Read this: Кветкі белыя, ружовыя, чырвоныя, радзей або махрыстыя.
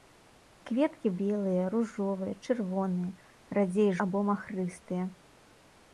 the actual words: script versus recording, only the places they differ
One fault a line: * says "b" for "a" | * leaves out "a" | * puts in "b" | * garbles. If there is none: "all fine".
all fine